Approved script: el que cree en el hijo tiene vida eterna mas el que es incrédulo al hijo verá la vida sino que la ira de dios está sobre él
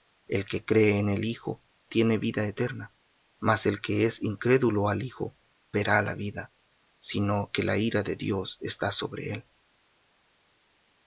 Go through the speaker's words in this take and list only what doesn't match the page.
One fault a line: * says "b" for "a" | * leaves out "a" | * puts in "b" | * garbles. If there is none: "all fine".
all fine